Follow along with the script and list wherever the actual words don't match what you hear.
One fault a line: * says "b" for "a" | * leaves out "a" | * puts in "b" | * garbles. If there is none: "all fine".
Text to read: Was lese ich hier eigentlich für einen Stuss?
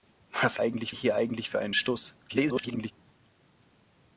* says "eigentlich" for "lese"
* garbles